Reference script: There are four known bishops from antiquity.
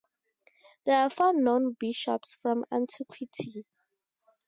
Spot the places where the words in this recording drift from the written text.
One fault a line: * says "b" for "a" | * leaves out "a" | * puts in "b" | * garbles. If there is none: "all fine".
all fine